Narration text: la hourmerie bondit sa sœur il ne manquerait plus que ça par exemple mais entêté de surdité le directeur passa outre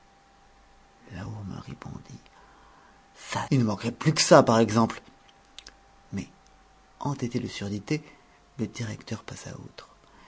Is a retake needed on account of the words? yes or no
yes